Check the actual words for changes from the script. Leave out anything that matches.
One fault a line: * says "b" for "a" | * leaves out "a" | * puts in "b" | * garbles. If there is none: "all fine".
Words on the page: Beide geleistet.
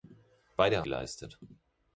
all fine